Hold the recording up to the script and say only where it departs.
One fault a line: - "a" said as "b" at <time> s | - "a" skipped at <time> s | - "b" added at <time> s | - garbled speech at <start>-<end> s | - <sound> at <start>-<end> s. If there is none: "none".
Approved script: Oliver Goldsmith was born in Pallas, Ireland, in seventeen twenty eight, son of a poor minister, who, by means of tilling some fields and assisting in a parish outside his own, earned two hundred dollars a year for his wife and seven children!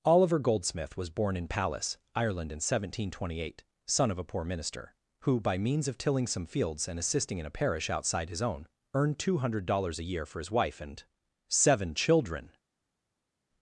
none